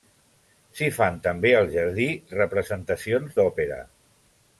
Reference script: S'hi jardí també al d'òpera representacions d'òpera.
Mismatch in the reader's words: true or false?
true